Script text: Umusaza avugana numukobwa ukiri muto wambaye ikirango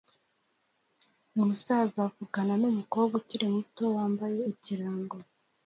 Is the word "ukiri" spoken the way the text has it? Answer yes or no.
yes